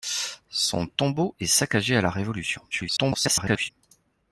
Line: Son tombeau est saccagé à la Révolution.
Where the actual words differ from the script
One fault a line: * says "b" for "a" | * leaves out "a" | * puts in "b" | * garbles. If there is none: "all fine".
* garbles